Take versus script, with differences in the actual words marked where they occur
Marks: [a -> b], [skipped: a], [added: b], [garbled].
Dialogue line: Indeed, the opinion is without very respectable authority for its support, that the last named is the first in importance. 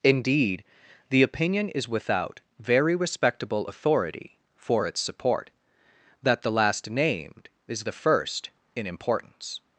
Indeed, the opinion is without very respectable authority for its support, that the last named is the first in importance.